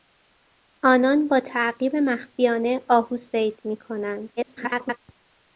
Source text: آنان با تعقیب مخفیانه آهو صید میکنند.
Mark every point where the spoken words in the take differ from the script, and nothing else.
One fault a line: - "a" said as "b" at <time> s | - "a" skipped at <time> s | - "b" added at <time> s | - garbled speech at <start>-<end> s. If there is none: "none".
- garbled speech at 4.4-5.0 s